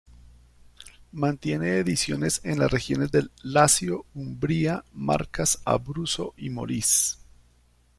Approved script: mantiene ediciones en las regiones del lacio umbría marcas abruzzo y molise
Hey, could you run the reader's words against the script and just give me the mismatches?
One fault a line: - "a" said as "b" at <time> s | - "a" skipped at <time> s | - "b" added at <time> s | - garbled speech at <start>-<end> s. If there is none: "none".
none